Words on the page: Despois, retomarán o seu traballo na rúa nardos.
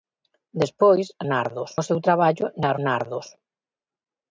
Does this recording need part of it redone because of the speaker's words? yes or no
yes